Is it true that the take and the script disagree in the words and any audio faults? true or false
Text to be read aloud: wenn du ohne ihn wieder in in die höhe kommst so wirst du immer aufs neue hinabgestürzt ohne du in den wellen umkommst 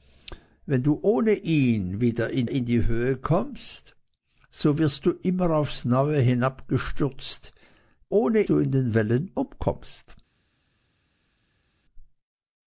false